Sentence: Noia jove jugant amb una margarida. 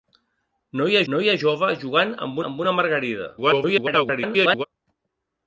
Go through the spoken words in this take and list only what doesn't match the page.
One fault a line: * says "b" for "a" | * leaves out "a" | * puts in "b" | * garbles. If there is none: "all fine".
* puts in "noia"
* puts in "amb"
* garbles